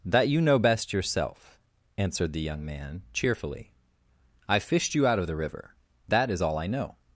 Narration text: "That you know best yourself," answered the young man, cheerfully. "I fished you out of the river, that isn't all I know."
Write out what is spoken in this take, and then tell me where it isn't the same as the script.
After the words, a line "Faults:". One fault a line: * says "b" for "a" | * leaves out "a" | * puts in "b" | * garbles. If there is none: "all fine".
"That you know best yourself," answered the young man, cheerfully. "I fished you out of the river, that is all I know."
Faults:
* says "is" for "isn't"